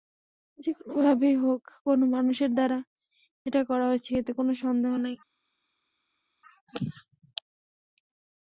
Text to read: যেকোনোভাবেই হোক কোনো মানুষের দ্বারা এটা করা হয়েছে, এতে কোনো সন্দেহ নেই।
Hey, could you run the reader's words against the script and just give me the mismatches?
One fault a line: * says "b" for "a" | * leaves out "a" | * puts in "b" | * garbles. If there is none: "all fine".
all fine